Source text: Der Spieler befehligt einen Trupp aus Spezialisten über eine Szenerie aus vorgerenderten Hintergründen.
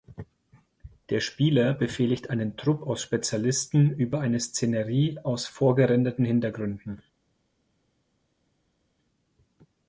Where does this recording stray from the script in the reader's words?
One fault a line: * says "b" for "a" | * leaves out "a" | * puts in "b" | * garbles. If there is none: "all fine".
all fine